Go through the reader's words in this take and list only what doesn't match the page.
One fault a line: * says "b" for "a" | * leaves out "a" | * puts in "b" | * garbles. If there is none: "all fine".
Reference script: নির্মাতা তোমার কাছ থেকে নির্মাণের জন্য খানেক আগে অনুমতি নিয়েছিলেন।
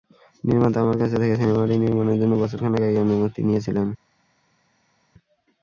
* says "আমার" for "তোমার"
* puts in "সিনেমাটি"
* puts in "বছর"